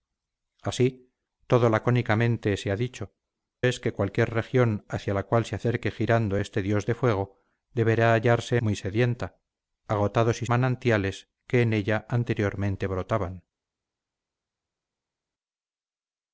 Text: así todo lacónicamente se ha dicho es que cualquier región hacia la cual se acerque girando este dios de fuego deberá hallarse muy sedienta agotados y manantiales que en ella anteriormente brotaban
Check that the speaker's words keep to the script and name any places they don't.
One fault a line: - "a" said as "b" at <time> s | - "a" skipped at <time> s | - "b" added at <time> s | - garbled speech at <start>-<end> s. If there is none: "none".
none